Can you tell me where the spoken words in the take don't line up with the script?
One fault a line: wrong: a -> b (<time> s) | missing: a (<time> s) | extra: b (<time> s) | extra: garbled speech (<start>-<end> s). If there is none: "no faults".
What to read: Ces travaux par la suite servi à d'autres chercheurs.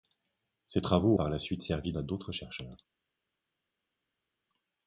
no faults